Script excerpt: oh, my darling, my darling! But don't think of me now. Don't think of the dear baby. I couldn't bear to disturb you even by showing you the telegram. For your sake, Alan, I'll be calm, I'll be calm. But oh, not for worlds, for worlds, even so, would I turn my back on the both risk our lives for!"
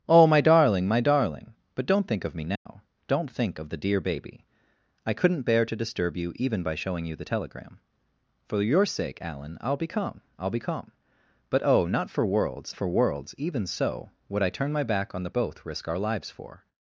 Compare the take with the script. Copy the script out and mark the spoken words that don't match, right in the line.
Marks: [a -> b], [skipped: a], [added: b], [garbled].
oh, my darling, my darling! But don't think of me now. Don't think of the dear baby. I couldn't bear to disturb you even by showing you the telegram. For your sake, Alan, I'll be calm, I'll be calm. But oh, not for worlds, for worlds, even so, would I turn my back on the both risk our lives for!"